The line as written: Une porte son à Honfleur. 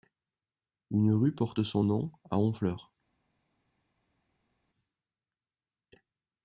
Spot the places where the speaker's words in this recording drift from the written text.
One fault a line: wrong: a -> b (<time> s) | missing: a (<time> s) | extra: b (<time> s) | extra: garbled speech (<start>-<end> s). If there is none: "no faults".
extra: rue (1.1 s)
extra: nom (1.8 s)